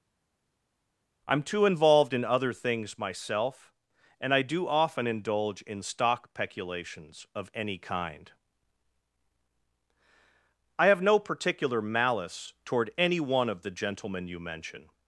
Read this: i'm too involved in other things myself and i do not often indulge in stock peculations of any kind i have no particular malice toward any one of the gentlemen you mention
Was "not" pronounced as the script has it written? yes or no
no